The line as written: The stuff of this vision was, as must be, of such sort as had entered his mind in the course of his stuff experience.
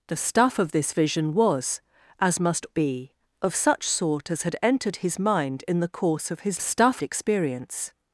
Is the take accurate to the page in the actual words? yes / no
yes